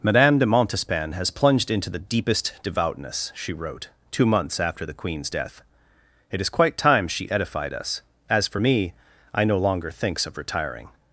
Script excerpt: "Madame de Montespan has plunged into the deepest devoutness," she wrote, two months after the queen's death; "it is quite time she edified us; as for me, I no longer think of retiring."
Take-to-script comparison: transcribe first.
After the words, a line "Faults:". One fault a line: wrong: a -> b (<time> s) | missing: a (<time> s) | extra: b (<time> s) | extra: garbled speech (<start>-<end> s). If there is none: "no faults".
"Madame de Montespan has plunged into the deepest devoutness," she wrote, two months after the queen's death; "it is quite time she edified us; as for me, I no longer thinks of retiring."
Faults:
wrong: think -> thinks (9.9 s)